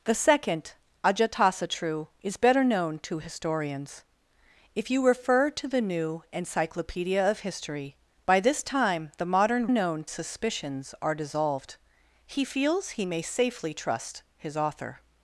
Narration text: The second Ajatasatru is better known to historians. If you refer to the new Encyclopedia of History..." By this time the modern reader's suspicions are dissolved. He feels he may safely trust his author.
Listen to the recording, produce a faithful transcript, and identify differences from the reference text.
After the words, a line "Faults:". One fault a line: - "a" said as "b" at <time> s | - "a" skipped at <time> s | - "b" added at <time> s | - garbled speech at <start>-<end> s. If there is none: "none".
The second Ajatasatru is better known to historians. If you refer to the new Encyclopedia of History..." By this time the modern known suspicions are dissolved. He feels he may safely trust his author.
Faults:
- "reader's" said as "known" at 9.7 s